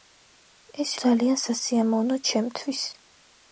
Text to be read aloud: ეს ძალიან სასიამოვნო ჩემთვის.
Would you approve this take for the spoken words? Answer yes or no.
yes